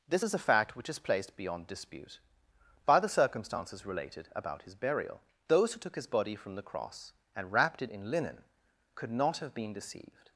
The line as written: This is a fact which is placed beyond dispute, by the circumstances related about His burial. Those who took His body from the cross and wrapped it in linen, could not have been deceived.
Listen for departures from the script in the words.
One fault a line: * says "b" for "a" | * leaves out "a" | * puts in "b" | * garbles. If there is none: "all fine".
all fine